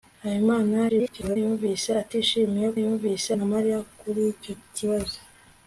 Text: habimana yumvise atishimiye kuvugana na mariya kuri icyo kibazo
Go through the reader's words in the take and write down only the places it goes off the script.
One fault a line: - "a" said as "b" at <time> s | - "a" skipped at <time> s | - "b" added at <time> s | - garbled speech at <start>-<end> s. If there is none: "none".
- garbled speech at 0.9-1.4 s
- "kuvugana" said as "yumvise" at 2.8 s